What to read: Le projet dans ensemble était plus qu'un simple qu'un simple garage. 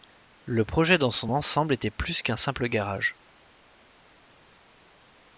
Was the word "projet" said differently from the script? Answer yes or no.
no